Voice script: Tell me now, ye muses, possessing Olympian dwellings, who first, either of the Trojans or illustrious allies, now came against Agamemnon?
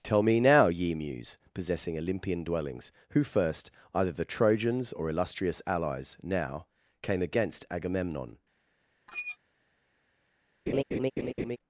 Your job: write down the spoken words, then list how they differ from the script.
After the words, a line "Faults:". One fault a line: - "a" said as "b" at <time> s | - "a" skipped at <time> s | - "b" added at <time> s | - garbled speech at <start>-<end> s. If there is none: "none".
Tell me now, ye muse, possessing Olympian dwellings, who first, either the Trojans or illustrious allies, now came against Agamemnon?
Faults:
- "muses" said as "muse" at 0.9 s
- "of" skipped at 4.1 s